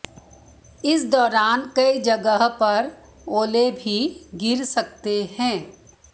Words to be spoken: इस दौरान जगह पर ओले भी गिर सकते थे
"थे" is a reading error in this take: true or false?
true